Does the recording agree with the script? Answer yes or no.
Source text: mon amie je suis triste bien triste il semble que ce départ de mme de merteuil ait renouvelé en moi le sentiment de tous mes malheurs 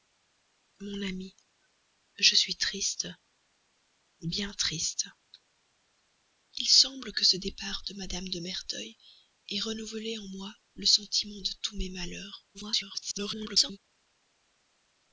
no